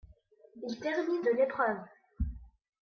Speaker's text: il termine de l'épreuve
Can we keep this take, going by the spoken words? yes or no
yes